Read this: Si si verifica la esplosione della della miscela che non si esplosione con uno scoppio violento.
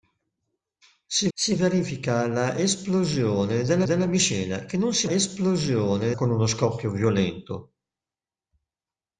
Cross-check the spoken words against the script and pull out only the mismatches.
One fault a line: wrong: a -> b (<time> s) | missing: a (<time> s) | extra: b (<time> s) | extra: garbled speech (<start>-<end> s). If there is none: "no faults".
no faults